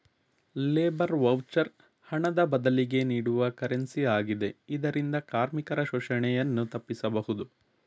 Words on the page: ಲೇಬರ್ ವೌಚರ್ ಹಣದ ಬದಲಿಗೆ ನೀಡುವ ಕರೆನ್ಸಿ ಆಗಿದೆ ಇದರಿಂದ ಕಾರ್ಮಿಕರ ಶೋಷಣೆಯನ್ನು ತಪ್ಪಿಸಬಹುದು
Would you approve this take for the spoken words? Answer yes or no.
yes